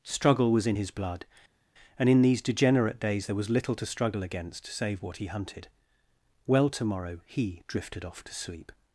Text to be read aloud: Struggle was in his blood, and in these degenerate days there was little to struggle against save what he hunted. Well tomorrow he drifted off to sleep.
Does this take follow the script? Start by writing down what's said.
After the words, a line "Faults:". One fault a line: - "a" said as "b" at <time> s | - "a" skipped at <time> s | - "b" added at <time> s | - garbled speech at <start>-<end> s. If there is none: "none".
Struggle was in his blood, and in these degenerate days there was little to struggle against save what he hunted. Well tomorrow he drifted off to sleep.
Faults:
none